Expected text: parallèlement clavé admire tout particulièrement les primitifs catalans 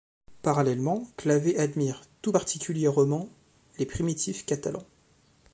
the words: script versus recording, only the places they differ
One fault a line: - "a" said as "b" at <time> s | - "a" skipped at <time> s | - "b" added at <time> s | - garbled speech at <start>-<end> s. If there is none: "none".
none